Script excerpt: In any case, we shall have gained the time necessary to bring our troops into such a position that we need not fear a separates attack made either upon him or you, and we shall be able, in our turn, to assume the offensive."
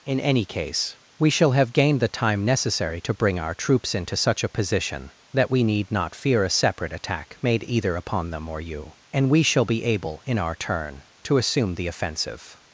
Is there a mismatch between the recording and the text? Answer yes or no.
yes